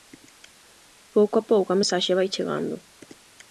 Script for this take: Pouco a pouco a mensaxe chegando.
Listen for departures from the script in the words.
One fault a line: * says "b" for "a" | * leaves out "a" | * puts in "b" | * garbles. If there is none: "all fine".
* puts in "vai"